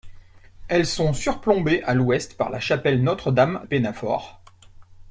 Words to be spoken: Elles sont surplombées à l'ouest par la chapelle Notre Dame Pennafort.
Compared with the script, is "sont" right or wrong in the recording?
right